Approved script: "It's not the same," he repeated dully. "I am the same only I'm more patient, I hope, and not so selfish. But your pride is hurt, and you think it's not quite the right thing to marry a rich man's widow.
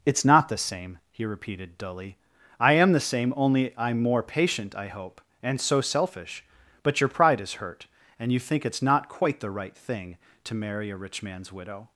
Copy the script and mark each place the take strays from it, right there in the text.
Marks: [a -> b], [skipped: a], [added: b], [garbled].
"It's not the same," he repeated dully. "I am the same only I'm more patient, I hope, and [skipped: not] so selfish. But your pride is hurt, and you think it's not quite the right thing to marry a rich man's widow.